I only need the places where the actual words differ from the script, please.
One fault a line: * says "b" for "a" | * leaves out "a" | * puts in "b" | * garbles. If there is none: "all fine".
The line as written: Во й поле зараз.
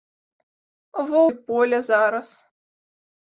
all fine